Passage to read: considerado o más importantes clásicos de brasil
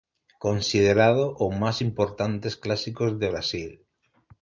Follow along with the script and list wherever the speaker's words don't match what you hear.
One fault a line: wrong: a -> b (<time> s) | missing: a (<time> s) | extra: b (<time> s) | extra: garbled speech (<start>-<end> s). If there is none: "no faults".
no faults